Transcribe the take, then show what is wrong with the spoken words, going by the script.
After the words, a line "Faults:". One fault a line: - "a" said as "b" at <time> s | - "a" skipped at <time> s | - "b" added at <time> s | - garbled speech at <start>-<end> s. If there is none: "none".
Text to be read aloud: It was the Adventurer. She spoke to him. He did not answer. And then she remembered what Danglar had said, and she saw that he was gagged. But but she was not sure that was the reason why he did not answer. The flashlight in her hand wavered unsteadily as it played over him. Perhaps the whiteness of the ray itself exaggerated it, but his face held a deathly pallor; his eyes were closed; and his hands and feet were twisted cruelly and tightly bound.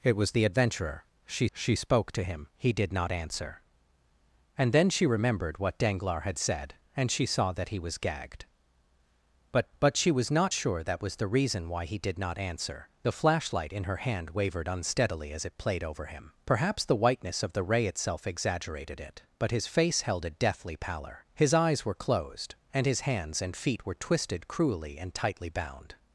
It was the Adventurer. She she spoke to him. He did not answer. And then she remembered what Danglar had said, and she saw that he was gagged. But but she was not sure that was the reason why he did not answer. The flashlight in her hand wavered unsteadily as it played over him. Perhaps the whiteness of the ray itself exaggerated it, but his face held a deathly pallor; his eyes were closed; and his hands and feet were twisted cruelly and tightly bound.
Faults:
- "she" added at 1.5 s